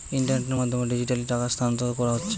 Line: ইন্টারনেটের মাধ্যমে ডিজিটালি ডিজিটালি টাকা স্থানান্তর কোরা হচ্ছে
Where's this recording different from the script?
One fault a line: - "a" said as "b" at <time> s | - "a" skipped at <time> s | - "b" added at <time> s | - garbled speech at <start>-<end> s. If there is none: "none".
- "ডিজিটালি" skipped at 1.2 s